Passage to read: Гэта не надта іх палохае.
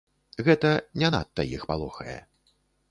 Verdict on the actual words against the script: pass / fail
pass